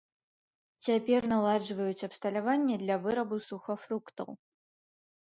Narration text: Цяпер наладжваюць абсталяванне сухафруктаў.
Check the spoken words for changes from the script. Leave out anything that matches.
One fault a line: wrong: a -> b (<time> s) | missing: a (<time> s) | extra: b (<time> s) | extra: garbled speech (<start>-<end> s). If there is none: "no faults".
extra: для вырабу (2.8 s)